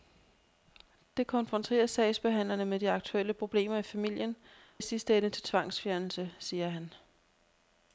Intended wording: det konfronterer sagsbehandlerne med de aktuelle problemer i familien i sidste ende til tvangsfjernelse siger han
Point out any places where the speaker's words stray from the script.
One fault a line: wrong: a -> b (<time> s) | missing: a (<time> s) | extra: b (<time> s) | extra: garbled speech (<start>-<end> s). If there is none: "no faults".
no faults